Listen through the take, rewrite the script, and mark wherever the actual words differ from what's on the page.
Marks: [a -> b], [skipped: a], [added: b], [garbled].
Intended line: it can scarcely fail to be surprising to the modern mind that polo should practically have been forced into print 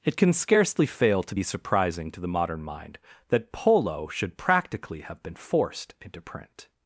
it can scarcely fail to be surprising to the modern mind that polo should practically have been forced into print